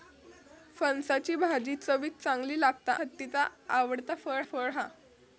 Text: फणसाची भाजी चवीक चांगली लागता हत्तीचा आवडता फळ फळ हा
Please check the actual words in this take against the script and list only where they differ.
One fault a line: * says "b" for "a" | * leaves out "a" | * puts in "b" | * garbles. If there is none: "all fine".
all fine